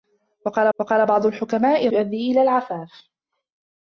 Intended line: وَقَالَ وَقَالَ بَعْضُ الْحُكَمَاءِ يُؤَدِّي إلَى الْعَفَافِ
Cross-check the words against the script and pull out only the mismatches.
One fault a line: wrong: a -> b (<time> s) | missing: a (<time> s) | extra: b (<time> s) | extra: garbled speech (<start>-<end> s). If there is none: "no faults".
no faults